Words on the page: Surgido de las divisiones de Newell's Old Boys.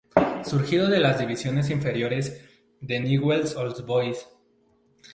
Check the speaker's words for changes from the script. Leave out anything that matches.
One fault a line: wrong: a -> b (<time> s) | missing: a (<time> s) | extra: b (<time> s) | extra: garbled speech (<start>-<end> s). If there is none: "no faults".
extra: inferiores (1.7 s)